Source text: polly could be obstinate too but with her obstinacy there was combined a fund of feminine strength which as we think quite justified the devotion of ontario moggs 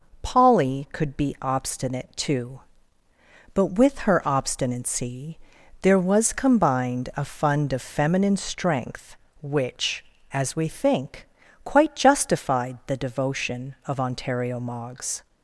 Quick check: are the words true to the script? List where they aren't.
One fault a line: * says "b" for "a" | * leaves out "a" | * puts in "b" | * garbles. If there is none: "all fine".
all fine